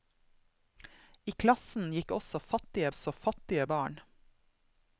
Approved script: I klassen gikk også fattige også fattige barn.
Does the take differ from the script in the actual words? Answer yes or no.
no